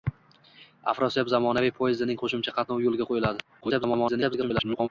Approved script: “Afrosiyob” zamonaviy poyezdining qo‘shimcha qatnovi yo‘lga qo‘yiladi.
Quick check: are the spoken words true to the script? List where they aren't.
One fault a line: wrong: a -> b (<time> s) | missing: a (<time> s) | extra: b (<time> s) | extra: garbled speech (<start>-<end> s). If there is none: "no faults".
extra: garbled speech (3.6-4.9 s)